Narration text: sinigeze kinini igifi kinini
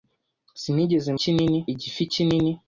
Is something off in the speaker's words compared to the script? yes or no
no